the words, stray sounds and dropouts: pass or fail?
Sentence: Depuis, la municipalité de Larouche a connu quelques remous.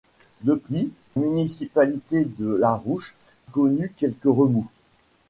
fail